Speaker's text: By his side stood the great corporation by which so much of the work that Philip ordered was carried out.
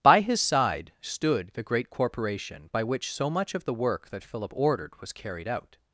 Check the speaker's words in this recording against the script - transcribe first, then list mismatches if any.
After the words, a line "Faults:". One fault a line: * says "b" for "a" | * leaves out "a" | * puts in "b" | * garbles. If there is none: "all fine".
By his side stood the great corporation by which so much of the work that Philip ordered was carried out.
Faults:
all fine